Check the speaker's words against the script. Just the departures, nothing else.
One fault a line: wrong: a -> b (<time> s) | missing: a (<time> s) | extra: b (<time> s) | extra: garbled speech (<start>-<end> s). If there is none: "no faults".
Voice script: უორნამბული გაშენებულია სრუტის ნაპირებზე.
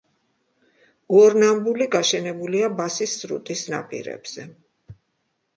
extra: ბასის (2.8 s)